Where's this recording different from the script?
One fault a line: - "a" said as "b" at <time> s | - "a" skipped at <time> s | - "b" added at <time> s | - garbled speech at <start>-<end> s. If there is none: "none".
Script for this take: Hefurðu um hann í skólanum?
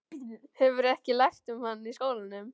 - "ekki lært" added at 0.9 s